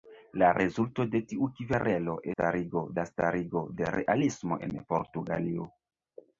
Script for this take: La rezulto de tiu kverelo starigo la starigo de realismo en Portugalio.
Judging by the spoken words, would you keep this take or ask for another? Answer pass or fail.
pass